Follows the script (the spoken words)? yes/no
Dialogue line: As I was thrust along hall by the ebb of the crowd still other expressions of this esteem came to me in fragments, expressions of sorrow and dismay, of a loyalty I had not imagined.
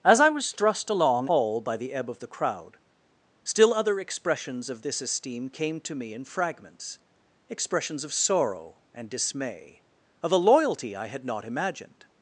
yes